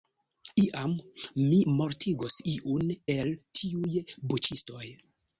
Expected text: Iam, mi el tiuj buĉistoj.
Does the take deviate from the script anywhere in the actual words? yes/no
yes